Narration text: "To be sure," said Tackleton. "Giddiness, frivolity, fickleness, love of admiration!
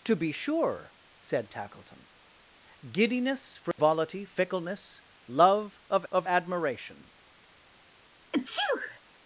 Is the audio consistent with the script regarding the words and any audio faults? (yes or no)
no